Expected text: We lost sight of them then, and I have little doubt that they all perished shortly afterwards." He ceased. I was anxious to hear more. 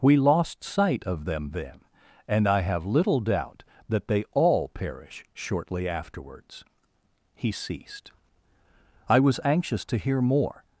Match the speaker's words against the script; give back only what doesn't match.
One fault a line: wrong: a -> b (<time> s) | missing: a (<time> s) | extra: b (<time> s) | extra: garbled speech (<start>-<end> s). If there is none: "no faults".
wrong: perished -> perish (4.7 s)